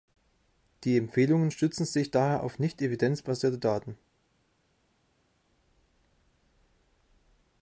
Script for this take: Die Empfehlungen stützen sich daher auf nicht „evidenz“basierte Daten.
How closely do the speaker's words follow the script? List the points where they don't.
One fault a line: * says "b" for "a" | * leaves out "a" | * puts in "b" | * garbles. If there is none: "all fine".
all fine